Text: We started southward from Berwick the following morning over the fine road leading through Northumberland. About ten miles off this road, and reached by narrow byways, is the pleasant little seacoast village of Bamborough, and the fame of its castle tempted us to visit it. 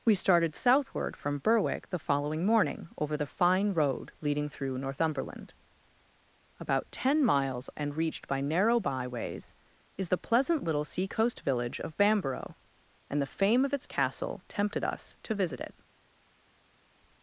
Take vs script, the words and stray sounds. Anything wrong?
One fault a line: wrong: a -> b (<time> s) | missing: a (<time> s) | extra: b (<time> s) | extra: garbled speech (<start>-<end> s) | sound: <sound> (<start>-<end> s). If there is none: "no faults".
missing: off this road (7.7 s)